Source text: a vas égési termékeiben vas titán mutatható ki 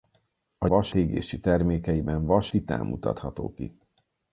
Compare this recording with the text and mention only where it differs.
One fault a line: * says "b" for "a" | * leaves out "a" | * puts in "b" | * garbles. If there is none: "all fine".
all fine